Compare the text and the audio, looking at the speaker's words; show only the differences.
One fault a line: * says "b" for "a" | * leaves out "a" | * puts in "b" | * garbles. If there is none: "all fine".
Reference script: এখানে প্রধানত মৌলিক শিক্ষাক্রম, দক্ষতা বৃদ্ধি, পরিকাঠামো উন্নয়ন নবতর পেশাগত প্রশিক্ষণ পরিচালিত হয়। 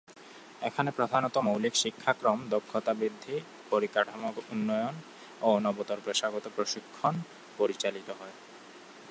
* puts in "ও"